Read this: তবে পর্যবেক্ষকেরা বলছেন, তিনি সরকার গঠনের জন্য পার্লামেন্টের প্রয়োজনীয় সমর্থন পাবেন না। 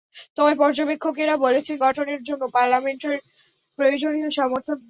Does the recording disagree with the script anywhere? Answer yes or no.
yes